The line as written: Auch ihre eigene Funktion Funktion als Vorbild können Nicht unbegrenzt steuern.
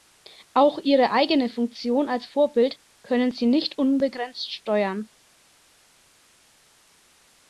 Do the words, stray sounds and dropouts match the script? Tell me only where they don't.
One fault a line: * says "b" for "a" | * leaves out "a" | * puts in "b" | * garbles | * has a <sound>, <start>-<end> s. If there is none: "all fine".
* leaves out "Funktion"
* puts in "Sie"